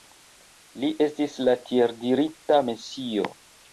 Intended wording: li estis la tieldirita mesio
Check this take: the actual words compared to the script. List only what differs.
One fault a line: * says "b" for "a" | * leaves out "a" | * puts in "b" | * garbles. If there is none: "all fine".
all fine